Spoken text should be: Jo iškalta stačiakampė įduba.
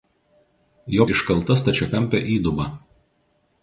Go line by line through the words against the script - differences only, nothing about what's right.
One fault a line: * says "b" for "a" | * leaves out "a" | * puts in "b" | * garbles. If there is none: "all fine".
all fine